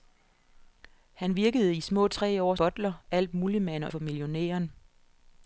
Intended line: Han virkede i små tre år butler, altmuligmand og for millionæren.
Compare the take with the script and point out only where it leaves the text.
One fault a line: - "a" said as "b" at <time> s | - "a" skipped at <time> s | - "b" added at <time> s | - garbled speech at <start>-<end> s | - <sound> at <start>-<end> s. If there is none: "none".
none